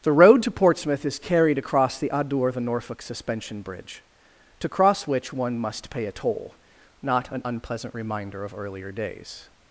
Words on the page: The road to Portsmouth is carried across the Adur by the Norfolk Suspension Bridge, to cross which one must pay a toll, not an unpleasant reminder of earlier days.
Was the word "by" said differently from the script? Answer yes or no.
yes